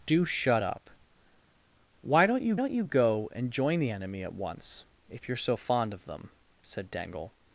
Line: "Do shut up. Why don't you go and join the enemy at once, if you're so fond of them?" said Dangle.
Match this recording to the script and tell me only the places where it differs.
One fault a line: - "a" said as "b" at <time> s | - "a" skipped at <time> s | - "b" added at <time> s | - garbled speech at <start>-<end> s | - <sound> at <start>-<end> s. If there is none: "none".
- "don't you" added at 2.5 s